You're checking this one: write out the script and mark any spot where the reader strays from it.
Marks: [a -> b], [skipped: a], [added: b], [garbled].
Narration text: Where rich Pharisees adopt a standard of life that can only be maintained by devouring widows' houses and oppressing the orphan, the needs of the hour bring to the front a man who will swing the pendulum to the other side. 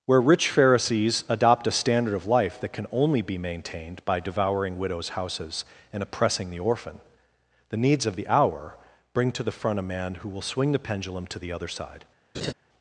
Where rich Pharisees adopt a standard of life that can only be maintained by devouring widows' houses and oppressing the orphan, the needs of the hour bring to the front a man who will swing the pendulum to the other side.